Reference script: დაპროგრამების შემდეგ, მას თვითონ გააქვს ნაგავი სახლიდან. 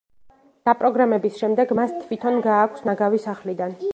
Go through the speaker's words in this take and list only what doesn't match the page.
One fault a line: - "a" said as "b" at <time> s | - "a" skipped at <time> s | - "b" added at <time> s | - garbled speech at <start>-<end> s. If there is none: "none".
none